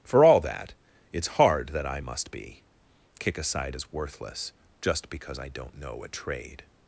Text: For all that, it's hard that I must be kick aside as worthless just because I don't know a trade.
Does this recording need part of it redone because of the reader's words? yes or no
no